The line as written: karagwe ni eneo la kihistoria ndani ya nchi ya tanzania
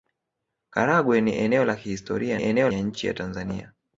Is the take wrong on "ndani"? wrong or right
wrong